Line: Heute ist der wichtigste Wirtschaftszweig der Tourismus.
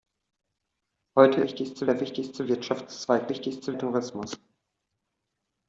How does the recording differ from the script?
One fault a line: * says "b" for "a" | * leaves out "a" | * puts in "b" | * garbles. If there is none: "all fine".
* says "wichtigste" for "ist"
* says "wichtigste" for "der"